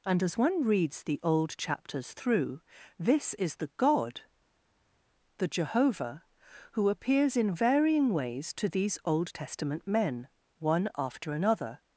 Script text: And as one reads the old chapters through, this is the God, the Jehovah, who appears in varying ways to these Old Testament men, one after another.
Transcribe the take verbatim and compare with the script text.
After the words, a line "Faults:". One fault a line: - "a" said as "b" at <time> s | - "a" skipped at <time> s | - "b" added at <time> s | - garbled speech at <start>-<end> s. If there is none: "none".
And as one reads the old chapters through, this is the God, the Jehovah, who appears in varying ways to these Old Testament men, one after another.
Faults:
none